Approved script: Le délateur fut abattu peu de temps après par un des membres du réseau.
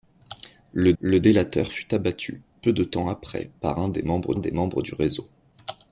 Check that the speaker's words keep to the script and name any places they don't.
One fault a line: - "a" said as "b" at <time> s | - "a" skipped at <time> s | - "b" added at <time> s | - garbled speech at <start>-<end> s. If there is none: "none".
- "le" added at 1.0 s
- "des membres" added at 4.4 s